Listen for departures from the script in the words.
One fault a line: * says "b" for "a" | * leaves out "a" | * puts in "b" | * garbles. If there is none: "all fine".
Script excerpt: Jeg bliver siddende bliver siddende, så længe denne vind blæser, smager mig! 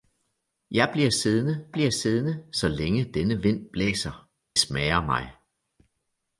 all fine